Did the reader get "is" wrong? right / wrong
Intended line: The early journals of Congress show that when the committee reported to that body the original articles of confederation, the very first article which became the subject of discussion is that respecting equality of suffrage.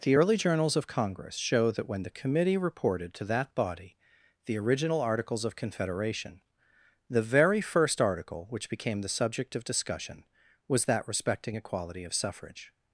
wrong